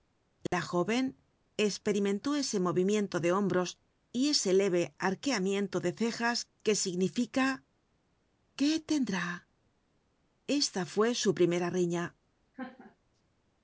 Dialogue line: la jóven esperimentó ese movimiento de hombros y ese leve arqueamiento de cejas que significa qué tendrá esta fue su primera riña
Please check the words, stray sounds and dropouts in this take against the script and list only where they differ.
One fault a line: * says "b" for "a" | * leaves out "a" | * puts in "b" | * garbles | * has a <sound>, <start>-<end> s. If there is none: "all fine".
* has a dropout, 0.5-0.5 s
* has a laugh, 12.5-13.0 s